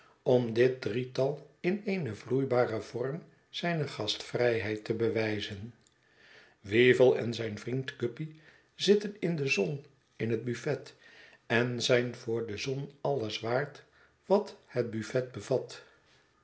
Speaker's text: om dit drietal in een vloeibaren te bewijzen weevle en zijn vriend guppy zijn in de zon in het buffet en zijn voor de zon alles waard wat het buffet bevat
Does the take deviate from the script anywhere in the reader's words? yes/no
yes